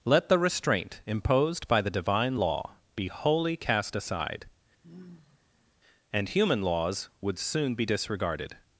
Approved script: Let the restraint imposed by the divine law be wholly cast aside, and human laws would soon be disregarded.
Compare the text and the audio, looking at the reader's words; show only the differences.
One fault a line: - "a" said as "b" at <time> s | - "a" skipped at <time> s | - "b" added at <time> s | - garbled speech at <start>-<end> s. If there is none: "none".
none